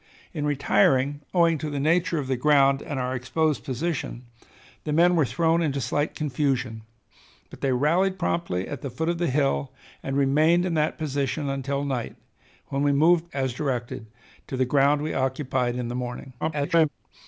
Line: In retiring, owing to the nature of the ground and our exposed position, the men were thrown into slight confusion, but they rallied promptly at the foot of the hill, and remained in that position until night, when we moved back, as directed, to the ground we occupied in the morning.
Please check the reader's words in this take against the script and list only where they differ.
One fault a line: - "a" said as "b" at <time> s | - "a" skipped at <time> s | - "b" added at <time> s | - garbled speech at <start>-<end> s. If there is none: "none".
- "back" skipped at 13.3 s
- garbled speech at 16.4-16.9 s